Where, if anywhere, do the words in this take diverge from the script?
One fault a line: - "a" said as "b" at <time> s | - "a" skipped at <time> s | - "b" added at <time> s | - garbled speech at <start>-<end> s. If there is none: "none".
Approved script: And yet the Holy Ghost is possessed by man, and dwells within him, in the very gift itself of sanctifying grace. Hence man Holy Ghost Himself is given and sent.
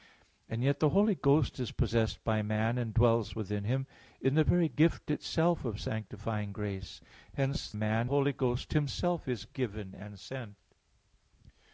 none